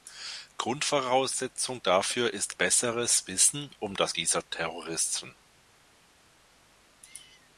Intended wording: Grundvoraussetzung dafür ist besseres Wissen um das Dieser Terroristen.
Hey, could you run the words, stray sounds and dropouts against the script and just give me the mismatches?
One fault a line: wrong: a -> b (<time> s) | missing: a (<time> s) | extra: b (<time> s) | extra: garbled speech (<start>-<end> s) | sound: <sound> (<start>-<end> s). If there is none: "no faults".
no faults